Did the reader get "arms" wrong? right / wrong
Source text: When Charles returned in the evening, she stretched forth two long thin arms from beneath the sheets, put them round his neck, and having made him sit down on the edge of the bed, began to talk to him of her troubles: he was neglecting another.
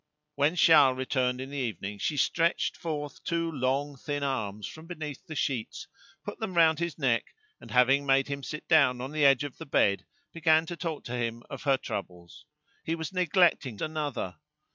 right